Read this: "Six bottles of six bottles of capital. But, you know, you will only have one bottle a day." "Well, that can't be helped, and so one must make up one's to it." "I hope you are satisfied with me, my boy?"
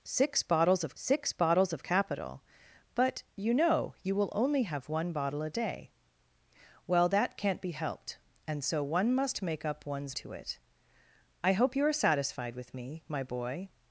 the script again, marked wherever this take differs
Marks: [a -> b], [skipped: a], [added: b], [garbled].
"Six bottles of six bottles of capital. But, you know, you will only have one bottle a day." "Well, that can't be helped, and so one must make up one's to it." "I hope you are satisfied with me, my boy?"